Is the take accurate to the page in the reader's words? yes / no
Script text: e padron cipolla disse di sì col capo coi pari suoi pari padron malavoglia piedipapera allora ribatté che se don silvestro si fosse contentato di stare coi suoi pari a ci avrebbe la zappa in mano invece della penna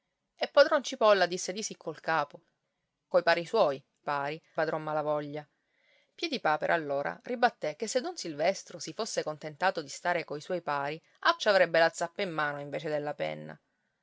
yes